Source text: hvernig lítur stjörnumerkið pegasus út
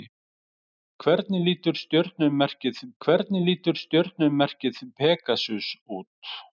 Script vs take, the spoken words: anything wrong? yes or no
yes